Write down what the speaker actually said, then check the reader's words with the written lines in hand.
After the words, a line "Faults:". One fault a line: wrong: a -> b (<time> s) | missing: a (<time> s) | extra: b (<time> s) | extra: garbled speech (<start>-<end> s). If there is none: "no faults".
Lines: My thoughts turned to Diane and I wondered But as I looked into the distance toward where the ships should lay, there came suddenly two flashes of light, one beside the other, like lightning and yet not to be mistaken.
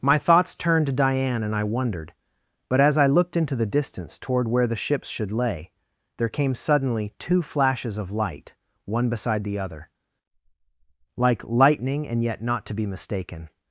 My thoughts turned to Diane and I wondered But as I looked into the distance toward where the ships should lay, there came suddenly two flashes of light, one beside the other, like lightning and yet not to be mistaken.
Faults:
no faults